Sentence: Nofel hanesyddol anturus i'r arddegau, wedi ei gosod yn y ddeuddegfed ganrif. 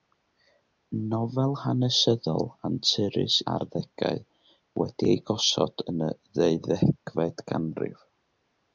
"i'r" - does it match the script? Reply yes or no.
no